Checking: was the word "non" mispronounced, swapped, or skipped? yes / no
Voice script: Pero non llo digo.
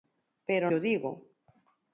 yes